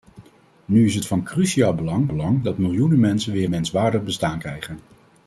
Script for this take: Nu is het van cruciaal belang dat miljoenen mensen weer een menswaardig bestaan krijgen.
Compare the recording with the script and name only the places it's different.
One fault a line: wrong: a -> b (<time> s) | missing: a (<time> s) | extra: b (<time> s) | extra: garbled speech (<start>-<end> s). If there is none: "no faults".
extra: belang (2.1 s)
missing: een (3.5 s)